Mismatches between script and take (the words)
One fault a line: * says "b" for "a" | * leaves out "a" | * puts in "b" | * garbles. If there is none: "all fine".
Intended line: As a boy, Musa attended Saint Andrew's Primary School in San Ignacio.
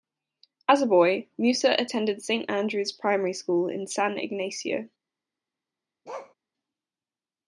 all fine